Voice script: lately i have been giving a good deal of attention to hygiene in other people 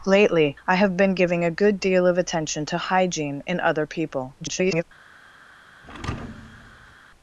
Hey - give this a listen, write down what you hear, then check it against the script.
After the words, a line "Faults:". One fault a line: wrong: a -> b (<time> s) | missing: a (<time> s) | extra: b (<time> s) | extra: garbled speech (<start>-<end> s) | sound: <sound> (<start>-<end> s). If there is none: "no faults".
lately i have been giving a good deal of attention to hygiene in other people [garbled]
Faults:
extra: garbled speech (4.4-4.8 s)
sound: thud (5.8-7.0 s)